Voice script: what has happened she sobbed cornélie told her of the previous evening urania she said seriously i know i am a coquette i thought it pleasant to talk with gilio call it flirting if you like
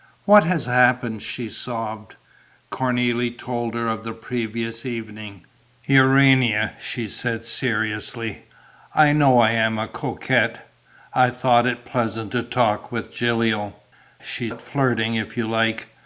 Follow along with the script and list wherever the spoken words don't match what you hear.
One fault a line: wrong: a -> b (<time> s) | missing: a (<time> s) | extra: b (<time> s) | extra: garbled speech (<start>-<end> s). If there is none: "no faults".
wrong: call -> she (14.2 s)